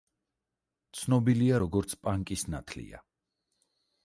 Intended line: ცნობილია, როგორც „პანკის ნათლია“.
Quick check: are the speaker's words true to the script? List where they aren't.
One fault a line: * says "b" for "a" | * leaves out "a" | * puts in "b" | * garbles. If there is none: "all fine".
all fine